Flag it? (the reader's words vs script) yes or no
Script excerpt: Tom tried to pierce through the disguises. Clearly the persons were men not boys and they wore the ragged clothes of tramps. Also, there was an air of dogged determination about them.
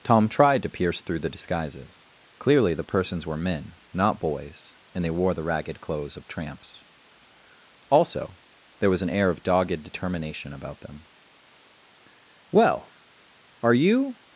yes